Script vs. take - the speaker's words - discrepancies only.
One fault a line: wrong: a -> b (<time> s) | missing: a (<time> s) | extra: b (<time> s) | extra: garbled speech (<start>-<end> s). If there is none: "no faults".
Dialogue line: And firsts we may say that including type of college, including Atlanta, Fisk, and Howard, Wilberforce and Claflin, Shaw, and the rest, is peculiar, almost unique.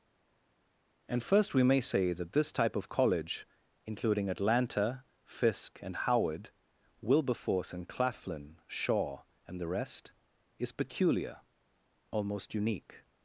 wrong: firsts -> first (1.2 s)
wrong: including -> this (2.3 s)